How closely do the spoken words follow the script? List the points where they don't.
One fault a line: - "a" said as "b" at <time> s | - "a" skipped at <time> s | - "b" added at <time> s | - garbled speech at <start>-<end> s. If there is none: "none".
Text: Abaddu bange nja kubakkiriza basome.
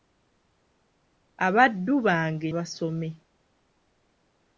- "nja kubakkiriza" skipped at 2.5 s